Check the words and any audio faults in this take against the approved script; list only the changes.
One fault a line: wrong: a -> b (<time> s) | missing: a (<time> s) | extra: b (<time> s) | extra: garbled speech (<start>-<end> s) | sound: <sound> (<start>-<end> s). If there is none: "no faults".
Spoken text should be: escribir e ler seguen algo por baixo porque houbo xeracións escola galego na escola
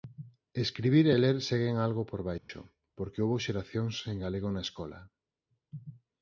sound: dropout (2.4-2.5 s)
wrong: escola -> sen (4.0 s)